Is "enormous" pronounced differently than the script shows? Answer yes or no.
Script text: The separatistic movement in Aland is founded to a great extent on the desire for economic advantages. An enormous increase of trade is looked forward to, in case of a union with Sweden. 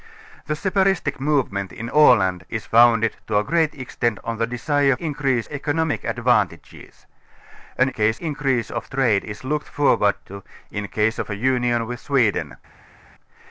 yes